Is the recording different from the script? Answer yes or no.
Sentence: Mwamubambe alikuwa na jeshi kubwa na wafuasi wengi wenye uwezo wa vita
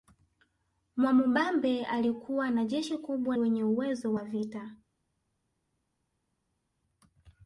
yes